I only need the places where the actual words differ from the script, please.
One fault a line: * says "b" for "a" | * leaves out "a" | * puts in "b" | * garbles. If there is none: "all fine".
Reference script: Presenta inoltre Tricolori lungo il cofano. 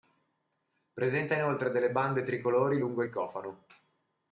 * puts in "delle bande"